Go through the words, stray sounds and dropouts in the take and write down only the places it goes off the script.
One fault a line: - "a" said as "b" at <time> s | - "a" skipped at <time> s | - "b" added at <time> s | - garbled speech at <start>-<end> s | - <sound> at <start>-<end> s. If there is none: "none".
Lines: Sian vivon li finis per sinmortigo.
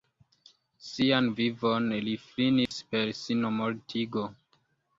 - dropout at 2.7-2.7 s